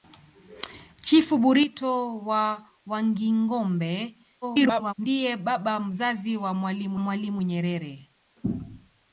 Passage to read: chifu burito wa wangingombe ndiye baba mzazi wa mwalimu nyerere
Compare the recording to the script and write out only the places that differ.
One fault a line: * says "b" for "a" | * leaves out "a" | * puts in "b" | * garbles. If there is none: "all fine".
* garbles
* puts in "mwalimu"